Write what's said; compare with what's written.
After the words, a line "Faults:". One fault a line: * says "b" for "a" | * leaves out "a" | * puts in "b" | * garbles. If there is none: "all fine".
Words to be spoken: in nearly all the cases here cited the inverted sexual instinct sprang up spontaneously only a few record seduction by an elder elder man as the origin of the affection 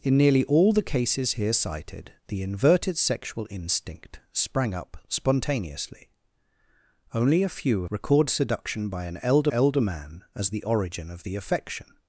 in nearly all the cases here cited the inverted sexual instinct sprang up spontaneously only a few record seduction by an elder elder man as the origin of the affection
Faults:
all fine